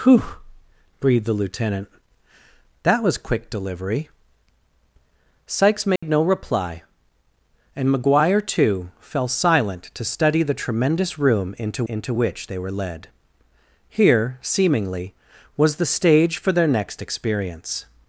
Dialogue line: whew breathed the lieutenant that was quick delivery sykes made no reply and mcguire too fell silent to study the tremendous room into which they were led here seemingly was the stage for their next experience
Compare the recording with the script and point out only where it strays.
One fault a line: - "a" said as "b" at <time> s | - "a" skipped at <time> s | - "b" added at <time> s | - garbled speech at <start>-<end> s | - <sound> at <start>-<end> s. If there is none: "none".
- dropout at 6.0-6.0 s
- "into" added at 11.9 s